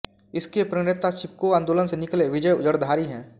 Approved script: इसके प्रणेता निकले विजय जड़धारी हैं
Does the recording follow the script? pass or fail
fail